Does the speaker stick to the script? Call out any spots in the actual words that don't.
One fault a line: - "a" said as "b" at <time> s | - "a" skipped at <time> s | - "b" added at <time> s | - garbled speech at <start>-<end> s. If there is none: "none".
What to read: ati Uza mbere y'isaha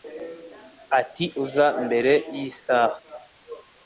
none